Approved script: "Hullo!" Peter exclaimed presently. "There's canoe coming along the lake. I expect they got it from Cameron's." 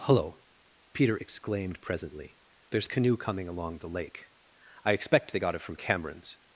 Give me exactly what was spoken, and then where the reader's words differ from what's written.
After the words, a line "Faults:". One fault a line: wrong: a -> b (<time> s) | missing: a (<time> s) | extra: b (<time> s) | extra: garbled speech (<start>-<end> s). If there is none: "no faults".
"Hullo!" Peter exclaimed presently. "There's canoe coming along the lake. I expect they got it from Cameron's."
Faults:
no faults